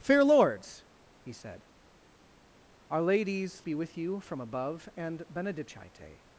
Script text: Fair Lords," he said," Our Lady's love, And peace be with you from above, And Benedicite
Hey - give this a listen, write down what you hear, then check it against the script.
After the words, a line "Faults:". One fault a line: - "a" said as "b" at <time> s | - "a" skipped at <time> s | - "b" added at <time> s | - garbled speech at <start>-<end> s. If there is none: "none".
Fair Lords," he said," Our Lady's be with you from above, And Benedicite
Faults:
- "love And peace" skipped at 3.7 s